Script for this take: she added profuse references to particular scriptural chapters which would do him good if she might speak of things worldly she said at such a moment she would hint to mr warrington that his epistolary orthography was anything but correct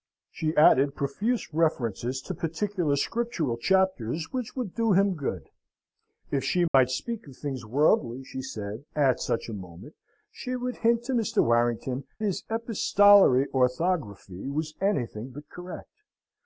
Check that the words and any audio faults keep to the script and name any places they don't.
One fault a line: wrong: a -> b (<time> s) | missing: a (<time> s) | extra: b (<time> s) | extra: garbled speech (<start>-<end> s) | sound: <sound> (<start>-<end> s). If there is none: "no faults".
sound: dropout (6.7-6.7 s)
missing: that (12.0 s)